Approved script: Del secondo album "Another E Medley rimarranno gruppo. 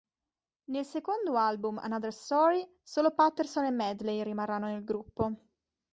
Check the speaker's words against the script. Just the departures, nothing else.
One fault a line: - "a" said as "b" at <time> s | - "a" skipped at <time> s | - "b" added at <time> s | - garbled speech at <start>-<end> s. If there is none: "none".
- "Del" said as "Nel" at 0.7 s
- "Story solo Patterson" added at 2.1 s
- "nel" added at 4.7 s